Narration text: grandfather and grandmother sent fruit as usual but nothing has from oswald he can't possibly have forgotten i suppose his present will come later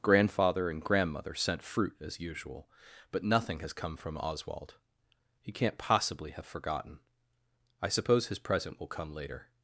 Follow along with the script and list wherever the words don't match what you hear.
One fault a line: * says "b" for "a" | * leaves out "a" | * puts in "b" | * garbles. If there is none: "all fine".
* puts in "come"